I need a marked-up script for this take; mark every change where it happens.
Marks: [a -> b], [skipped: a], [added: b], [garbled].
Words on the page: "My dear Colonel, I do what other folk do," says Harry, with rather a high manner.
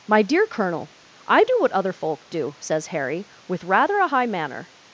"My dear Colonel, I do what other folk do," says Harry, with rather a high manner.